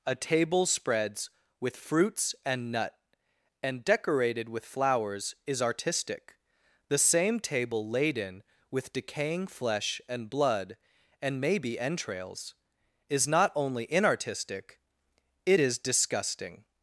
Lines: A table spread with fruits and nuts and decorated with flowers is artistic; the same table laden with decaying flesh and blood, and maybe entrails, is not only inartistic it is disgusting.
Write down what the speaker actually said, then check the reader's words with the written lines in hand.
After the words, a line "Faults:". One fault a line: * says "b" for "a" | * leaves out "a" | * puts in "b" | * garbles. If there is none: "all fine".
A table spreads with fruits and nut and decorated with flowers is artistic; the same table laden with decaying flesh and blood, and maybe entrails, is not only inartistic it is disgusting.
Faults:
* says "spreads" for "spread"
* says "nut" for "nuts"